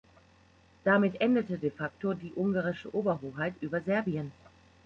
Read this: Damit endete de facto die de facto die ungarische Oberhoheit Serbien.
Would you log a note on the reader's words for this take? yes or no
yes